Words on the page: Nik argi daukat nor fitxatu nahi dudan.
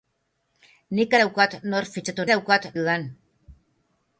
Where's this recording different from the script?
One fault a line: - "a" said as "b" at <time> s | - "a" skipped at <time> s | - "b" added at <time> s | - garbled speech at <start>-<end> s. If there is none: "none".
- "argi" skipped at 1.1 s
- "nahi" said as "daukat" at 2.3 s